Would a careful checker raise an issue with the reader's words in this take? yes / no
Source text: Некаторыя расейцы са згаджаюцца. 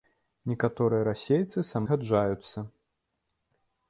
no